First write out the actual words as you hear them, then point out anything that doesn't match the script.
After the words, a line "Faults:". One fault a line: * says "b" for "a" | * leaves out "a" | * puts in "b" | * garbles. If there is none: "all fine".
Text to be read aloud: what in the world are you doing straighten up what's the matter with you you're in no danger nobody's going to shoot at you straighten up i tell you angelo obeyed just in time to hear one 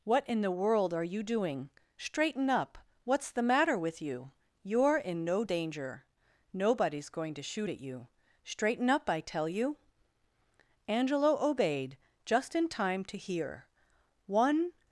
what in the world are you doing straighten up what's the matter with you you're in no danger nobody's going to shoot at you straighten up i tell you angelo obeyed just in time to hear one
Faults:
all fine